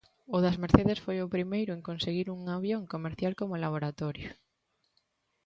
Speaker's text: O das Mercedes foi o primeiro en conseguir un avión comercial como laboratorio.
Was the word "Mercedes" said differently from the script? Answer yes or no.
no